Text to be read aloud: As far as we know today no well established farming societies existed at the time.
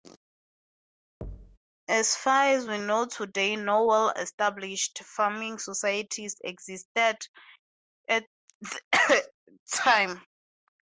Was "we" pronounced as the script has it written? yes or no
yes